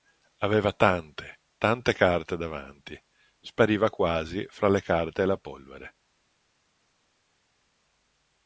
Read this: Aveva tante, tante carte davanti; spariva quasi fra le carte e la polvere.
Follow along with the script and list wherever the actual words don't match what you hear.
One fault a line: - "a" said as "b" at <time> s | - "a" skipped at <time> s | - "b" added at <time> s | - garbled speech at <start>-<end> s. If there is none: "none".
none